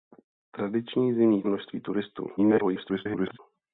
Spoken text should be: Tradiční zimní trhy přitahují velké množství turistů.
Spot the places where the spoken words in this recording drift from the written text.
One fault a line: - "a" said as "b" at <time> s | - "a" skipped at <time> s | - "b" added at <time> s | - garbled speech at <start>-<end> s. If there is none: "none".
- "trhy přitahují velké" skipped at 1.4 s
- garbled speech at 2.4-3.4 s